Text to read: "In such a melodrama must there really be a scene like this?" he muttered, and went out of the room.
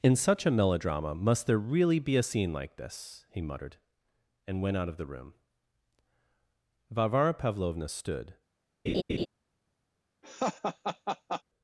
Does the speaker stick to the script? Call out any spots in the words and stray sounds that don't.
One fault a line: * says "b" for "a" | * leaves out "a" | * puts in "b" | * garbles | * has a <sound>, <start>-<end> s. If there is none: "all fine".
* puts in "Varvara Pavlovna stood"
* has a laugh, 8.9-9.3 s
* has a laugh, 10.2-11.4 s